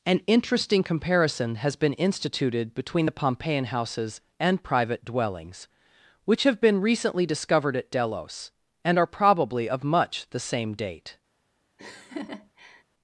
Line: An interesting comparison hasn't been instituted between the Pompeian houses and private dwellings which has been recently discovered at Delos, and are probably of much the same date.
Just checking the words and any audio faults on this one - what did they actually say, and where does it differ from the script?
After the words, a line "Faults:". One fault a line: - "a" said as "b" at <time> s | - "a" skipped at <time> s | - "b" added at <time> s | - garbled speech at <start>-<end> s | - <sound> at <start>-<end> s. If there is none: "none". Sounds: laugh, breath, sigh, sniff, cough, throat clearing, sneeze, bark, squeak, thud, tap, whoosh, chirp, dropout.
An interesting comparison has been instituted between the Pompeian houses and private dwellings which have been recently discovered at Delos, and are probably of much the same date.
Faults:
- "hasn't" said as "has" at 1.6 s
- "has" said as "have" at 6.4 s
- laugh at 11.8-12.8 s